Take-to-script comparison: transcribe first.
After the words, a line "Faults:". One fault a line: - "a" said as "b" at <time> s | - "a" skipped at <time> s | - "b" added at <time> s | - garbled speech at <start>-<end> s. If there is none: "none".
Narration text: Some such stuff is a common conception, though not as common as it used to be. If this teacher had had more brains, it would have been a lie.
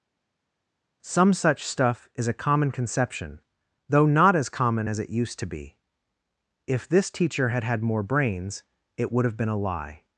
Some such stuff is a common conception, though not as common as it used to be. If this teacher had had more brains, it would have been a lie.
Faults:
none